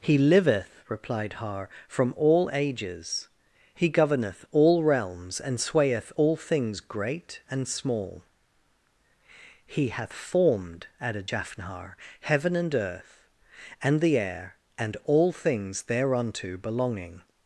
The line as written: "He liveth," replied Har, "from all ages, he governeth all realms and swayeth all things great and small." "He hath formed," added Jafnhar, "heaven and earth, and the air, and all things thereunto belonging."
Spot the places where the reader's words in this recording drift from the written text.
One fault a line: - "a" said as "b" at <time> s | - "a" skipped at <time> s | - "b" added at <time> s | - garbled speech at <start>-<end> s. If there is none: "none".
none